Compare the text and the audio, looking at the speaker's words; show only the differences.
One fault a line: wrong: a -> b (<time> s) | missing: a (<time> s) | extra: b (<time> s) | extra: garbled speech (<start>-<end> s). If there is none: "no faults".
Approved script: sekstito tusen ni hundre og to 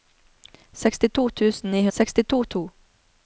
wrong: hundre -> sekstito (2.0 s)